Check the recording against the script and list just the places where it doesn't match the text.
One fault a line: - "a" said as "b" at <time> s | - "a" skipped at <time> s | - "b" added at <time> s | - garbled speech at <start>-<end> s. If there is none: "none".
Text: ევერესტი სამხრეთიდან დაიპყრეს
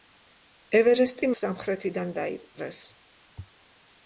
none